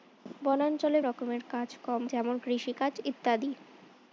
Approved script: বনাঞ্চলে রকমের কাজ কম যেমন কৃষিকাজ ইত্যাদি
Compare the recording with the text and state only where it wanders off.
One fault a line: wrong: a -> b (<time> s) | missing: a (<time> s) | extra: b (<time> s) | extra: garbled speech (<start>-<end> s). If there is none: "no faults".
no faults